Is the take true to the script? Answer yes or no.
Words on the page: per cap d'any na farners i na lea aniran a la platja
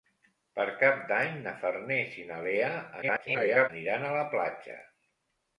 no